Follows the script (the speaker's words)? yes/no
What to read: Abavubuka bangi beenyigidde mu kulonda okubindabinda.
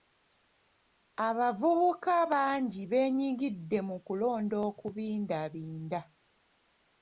yes